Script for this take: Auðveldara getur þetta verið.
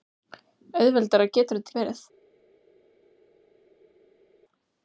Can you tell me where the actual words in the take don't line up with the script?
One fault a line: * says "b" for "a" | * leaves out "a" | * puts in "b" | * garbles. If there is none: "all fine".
all fine